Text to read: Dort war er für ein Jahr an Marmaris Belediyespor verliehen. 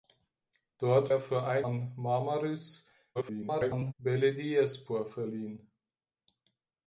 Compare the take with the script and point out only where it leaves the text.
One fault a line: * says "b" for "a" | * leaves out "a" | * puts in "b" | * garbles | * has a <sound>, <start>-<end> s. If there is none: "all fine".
* leaves out "war"
* leaves out "Jahr"
* garbles